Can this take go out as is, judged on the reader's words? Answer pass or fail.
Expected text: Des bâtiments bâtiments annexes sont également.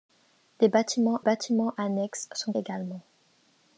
pass